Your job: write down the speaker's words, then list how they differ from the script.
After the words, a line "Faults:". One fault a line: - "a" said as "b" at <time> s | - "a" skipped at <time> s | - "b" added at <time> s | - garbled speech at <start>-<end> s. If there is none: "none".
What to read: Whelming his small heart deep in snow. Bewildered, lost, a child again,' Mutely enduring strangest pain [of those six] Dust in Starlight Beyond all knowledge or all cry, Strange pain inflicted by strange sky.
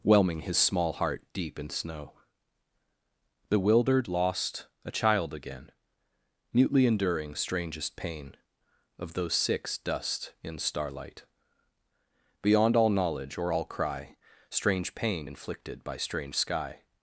Whelming his small heart deep in snow. Bewildered, lost, a child again,' Mutely enduring strangest pain [of those six] Dust in Starlight Beyond all knowledge or all cry, Strange pain inflicted by strange sky.
Faults:
none